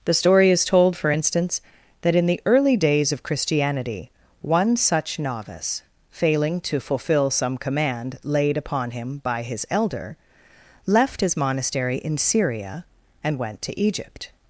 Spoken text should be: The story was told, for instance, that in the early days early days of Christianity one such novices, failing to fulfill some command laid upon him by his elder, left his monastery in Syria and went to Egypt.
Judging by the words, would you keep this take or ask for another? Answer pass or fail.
fail